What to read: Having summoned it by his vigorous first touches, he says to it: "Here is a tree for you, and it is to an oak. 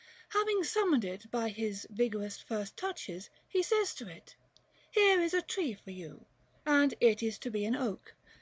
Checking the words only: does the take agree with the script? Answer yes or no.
no